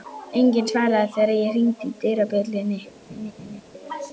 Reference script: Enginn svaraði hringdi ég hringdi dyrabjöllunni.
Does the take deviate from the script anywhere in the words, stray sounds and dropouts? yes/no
yes